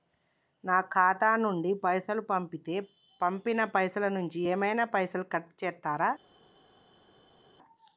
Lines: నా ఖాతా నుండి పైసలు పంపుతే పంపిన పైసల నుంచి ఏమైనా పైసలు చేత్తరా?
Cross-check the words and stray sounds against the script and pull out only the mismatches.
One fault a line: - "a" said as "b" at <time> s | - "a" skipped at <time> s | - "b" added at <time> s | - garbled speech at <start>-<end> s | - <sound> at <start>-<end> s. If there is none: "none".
- "కట్" added at 5.3 s